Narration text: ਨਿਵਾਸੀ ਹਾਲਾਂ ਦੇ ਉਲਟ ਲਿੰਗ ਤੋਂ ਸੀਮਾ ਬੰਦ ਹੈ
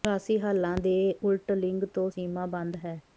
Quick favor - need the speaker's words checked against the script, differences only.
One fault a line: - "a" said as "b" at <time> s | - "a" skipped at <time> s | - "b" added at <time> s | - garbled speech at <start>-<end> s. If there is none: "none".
none